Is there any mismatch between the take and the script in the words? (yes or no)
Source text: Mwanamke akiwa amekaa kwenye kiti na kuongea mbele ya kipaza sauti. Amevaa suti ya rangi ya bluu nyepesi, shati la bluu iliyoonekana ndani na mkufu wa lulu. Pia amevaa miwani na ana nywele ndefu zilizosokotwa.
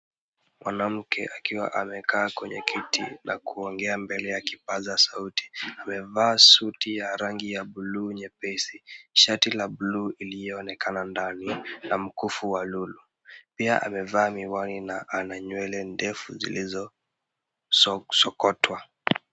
no